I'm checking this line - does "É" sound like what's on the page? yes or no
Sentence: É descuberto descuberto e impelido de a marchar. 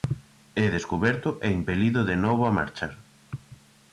yes